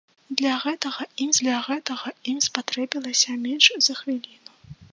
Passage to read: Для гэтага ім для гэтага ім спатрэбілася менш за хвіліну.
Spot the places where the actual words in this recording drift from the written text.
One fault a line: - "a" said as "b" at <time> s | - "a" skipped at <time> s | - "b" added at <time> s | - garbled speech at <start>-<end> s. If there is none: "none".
none